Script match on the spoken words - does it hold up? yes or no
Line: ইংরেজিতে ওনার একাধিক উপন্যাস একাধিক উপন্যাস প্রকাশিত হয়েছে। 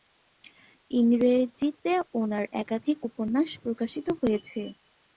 no